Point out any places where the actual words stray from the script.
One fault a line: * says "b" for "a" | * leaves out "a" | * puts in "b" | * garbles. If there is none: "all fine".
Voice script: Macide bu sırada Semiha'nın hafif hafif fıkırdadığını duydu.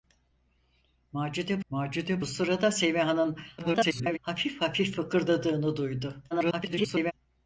* puts in "macide"
* garbles
* garbles